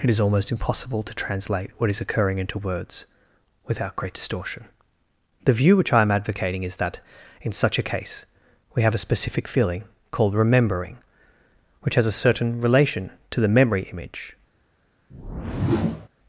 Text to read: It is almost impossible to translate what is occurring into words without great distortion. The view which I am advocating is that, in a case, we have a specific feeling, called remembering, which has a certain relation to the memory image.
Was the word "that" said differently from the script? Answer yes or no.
no